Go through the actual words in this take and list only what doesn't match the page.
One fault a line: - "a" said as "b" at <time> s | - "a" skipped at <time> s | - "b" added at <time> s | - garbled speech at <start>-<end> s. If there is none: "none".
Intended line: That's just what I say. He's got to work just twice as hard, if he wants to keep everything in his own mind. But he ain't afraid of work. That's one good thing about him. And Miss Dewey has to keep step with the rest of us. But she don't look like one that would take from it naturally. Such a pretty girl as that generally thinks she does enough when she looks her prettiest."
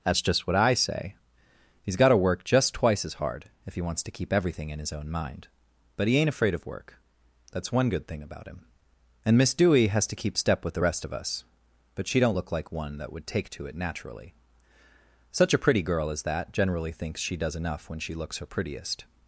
- "from" said as "to" at 13.5 s